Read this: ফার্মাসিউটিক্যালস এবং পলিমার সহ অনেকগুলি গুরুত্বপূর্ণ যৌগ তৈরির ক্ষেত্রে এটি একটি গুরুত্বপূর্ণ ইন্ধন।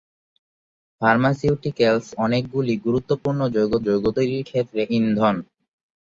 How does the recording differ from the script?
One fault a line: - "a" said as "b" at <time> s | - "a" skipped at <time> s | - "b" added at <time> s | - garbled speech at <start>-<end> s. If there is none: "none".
- "এবং পলিমার সহ" skipped at 2.1 s
- "যৌগ" added at 3.9 s
- "এটি একটি গুরুত্বপূর্ণ" skipped at 4.8 s